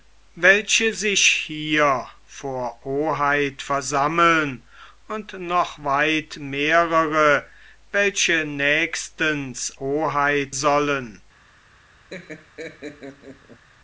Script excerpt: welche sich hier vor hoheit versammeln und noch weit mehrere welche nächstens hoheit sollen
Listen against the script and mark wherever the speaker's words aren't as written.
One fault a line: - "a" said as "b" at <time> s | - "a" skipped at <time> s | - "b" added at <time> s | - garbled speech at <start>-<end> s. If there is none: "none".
none